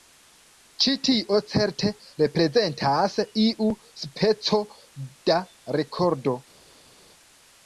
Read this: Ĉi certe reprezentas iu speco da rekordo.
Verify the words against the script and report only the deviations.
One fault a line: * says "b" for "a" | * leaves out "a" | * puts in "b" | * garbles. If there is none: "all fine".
* puts in "tio"